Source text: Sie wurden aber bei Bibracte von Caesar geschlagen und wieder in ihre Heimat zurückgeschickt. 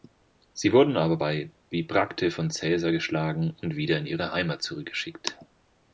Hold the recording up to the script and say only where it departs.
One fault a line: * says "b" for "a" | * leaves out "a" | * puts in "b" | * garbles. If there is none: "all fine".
all fine